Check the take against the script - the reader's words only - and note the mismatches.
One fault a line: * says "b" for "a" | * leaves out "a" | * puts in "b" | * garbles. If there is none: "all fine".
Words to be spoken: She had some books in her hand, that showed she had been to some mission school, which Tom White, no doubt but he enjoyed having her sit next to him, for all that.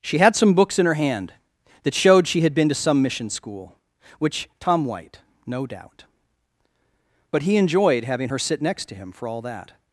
all fine